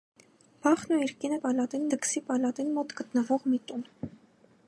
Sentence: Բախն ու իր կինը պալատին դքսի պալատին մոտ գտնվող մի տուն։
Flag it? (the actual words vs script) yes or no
no